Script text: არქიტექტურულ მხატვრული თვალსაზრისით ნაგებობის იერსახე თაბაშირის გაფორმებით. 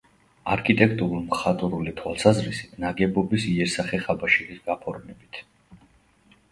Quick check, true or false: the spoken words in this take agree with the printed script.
true